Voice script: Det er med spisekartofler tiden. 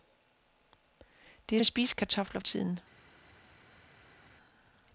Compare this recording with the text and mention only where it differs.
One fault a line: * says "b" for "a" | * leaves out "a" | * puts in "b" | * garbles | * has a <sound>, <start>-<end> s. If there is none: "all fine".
all fine